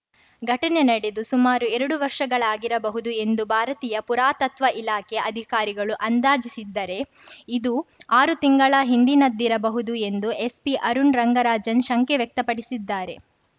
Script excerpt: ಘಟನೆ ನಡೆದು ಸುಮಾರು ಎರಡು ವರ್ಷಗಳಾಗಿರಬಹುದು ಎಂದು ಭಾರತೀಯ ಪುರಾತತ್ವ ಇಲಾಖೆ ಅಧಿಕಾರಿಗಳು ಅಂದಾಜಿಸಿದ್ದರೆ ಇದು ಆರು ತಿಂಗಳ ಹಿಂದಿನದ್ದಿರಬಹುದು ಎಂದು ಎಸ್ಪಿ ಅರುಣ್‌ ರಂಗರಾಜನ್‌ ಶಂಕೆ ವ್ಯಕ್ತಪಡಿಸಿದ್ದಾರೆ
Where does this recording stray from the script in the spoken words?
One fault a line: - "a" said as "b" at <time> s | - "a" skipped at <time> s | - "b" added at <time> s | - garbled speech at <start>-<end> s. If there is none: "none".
none